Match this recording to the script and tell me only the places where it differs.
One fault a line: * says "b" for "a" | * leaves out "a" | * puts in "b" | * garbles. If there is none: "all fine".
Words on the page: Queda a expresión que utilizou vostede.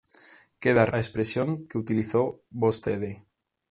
all fine